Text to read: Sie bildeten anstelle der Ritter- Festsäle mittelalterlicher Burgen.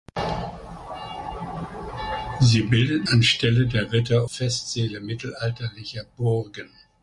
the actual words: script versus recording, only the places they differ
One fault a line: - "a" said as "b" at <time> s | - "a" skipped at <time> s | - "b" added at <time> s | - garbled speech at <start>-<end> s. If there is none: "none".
none